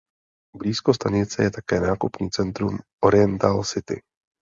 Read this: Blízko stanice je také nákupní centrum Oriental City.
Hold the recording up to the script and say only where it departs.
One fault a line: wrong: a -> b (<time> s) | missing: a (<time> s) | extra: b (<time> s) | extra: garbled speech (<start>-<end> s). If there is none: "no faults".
no faults